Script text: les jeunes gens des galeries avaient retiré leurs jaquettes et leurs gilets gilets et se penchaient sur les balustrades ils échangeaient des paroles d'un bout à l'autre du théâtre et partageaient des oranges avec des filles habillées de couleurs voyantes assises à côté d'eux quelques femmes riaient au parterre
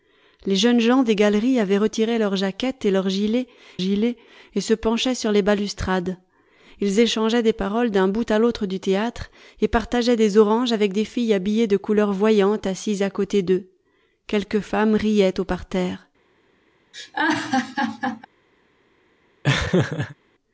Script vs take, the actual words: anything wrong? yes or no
no